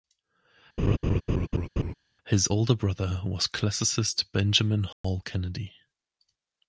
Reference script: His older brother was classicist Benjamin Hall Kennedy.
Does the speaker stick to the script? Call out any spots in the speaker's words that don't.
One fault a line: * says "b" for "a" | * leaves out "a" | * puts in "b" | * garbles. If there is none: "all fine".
all fine